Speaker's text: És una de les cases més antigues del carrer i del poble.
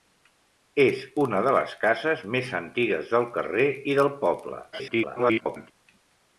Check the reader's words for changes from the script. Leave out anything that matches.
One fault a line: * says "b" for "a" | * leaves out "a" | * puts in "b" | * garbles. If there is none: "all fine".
* garbles